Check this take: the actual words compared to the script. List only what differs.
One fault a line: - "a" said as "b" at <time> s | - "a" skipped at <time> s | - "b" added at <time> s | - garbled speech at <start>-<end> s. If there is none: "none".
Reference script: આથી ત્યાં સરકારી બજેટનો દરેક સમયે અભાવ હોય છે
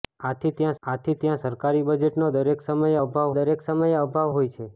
- "આથી ત્યાં" added at 0.8 s
- "દરેક સમયે અભાવ" added at 3.3 s